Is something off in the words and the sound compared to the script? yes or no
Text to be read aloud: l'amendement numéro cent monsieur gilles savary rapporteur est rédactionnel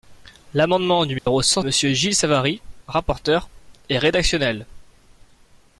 yes